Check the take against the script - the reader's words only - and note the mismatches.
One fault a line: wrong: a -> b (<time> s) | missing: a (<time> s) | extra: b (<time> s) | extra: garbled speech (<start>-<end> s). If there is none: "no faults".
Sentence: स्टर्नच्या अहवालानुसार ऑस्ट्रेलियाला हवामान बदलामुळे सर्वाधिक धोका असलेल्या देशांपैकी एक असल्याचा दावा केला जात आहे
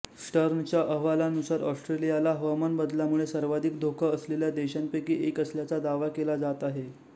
no faults